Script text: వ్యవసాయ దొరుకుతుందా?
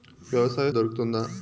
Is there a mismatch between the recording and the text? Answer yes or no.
no